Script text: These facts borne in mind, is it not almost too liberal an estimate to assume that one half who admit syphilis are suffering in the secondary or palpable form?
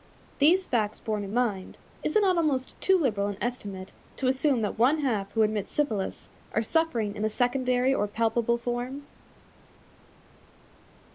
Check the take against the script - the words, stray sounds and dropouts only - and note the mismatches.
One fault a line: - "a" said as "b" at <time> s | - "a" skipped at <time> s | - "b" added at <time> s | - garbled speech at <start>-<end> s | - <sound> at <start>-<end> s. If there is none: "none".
none